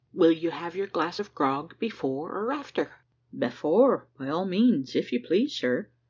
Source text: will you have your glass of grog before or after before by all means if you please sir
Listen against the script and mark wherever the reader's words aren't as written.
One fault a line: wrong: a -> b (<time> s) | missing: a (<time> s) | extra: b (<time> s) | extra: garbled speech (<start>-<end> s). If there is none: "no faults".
no faults